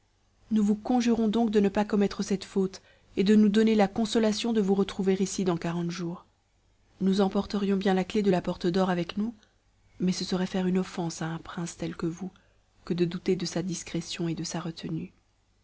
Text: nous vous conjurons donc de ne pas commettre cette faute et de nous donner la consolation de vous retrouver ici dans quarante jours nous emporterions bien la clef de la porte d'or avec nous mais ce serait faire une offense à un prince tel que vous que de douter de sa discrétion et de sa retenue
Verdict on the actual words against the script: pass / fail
pass